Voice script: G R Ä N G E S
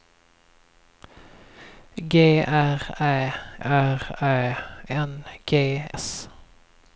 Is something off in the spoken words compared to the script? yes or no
yes